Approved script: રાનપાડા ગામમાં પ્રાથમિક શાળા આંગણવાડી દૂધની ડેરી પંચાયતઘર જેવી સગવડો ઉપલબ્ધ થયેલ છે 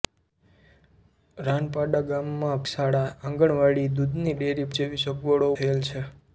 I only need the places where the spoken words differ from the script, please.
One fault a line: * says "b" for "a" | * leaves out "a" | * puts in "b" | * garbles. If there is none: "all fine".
* leaves out "પ્રાથમિક"
* leaves out "પંચાયતઘર"
* leaves out "ઉપલબ્ધ"